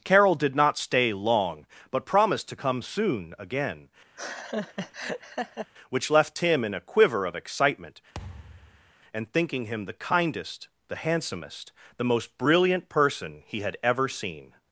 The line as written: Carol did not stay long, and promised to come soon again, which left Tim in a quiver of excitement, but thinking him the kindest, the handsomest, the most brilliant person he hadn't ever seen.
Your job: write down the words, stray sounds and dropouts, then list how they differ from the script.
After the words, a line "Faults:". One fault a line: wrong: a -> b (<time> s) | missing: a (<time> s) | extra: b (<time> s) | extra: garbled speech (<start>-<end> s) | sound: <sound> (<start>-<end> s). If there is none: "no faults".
Carol did not stay long, but promised to come soon again, which left Tim in a quiver of excitement, and thinking him the kindest, the handsomest, the most brilliant person he had ever seen.
Faults:
wrong: and -> but (1.9 s)
sound: laugh (4.1-5.7 s)
sound: thud (8.1-8.9 s)
wrong: but -> and (9.1 s)
wrong: hadn't -> had (13.6 s)